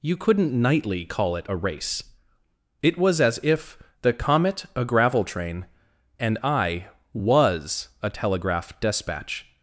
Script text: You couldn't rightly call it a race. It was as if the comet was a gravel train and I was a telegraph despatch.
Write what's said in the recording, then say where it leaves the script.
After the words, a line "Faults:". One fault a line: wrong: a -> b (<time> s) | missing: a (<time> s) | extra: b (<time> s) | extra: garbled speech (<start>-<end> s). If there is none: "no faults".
You couldn't nightly call it a race. It was as if the comet a gravel train and I was a telegraph despatch.
Faults:
wrong: rightly -> nightly (0.6 s)
missing: was (4.6 s)